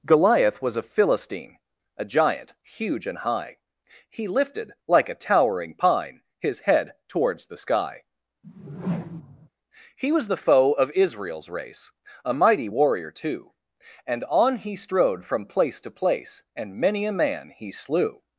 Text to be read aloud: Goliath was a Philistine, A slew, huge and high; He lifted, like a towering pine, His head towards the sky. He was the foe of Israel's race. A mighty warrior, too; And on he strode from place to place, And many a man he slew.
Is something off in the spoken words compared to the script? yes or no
yes